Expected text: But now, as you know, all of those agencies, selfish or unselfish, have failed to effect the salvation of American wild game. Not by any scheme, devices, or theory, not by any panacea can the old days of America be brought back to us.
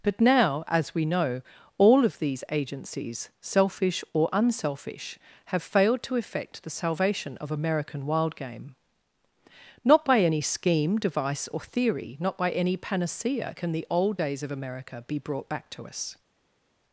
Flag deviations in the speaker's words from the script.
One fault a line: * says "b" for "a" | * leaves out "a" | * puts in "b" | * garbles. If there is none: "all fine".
* says "we" for "you"
* says "these" for "those"
* says "device" for "devices"